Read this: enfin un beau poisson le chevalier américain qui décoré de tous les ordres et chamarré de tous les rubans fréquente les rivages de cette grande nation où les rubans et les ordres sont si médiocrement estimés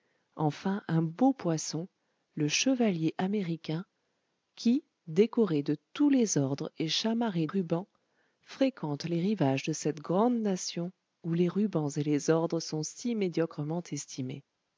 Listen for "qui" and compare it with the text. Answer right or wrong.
right